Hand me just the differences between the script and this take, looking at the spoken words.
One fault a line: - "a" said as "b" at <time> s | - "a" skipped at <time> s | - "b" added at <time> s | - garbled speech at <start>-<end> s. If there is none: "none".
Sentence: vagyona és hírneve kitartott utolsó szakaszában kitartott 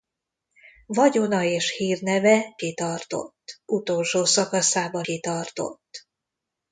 none